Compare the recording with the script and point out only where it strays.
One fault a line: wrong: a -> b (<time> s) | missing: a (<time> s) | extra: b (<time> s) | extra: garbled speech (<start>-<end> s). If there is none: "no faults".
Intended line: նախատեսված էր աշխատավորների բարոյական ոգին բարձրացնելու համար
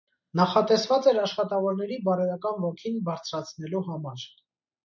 no faults